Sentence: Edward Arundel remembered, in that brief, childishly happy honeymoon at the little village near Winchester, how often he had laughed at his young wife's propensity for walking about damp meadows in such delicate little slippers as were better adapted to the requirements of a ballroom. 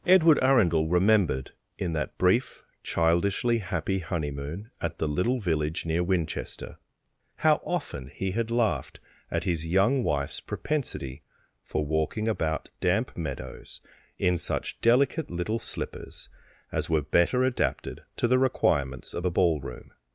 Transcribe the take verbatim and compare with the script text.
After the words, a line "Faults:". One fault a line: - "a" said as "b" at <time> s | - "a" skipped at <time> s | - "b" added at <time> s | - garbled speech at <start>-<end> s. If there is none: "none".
Edward Arundel remembered, in that brief, childishly happy honeymoon at the little village near Winchester, how often he had laughed at his young wife's propensity for walking about damp meadows in such delicate little slippers as were better adapted to the requirements of a ballroom.
Faults:
none